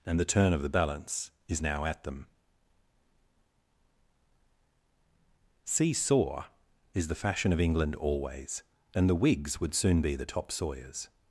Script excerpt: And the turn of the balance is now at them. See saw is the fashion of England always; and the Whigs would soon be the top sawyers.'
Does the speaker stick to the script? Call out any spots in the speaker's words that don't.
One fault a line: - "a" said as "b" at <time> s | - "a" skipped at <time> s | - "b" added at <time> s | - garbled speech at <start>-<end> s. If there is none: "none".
none